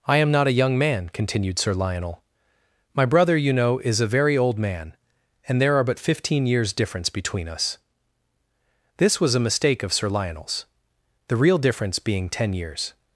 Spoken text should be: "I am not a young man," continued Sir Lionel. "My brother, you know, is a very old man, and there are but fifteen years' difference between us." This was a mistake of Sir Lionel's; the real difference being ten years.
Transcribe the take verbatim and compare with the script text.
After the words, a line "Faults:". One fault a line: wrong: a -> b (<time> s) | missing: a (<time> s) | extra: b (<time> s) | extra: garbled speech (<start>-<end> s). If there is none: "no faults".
"I am not a young man," continued Sir Lionel. "My brother, you know, is a very old man, and there are but fifteen years' difference between us." This was a mistake of Sir Lionel's; the real difference being ten years.
Faults:
no faults